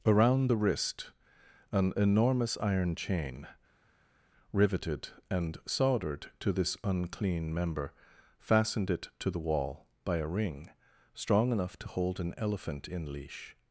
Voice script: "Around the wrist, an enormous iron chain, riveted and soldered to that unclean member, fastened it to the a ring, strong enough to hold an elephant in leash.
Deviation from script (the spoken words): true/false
true